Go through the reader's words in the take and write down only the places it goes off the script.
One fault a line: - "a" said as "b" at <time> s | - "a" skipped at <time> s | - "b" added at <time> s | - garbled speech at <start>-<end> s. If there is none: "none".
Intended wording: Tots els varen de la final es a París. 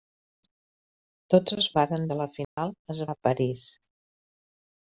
none